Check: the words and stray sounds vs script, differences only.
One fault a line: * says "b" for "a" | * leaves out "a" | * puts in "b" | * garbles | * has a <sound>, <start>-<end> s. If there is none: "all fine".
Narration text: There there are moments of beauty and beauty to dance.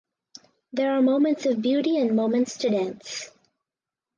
* leaves out "there"
* says "moments" for "beauty"